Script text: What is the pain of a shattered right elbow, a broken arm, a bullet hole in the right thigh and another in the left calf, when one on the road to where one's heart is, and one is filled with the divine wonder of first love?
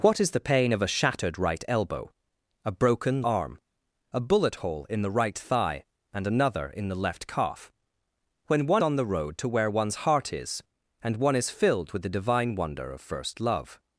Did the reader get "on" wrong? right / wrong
right